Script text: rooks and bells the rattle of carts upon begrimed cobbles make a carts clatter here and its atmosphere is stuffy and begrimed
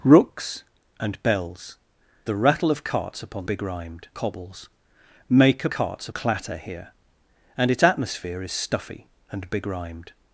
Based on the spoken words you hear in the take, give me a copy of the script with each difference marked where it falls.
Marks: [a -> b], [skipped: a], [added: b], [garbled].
rooks and bells the rattle of carts upon begrimed cobbles make a carts clatter here and its atmosphere is stuffy and begrimed